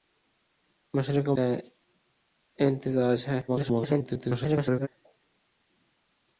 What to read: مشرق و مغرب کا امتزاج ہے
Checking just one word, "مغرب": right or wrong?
wrong